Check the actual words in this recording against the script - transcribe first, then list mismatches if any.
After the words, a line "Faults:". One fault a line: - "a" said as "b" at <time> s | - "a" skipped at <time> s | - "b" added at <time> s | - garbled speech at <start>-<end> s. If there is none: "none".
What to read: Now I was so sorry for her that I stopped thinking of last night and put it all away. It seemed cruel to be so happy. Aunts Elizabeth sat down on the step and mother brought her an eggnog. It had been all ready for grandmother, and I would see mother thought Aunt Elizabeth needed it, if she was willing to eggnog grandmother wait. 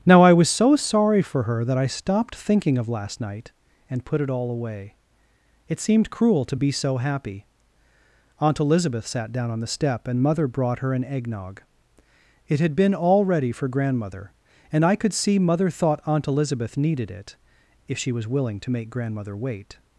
Now I was so sorry for her that I stopped thinking of last night and put it all away. It seemed cruel to be so happy. Aunt Elizabeth sat down on the step and mother brought her an eggnog. It had been all ready for grandmother, and I could see mother thought Aunt Elizabeth needed it, if she was willing to make grandmother wait.
Faults:
- "Aunts" said as "Aunt" at 8.4 s
- "would" said as "could" at 15.0 s
- "eggnog" said as "make" at 18.7 s